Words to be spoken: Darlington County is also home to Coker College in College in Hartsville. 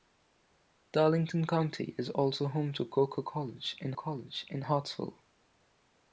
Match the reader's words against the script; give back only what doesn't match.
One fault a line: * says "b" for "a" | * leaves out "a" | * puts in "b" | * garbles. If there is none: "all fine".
all fine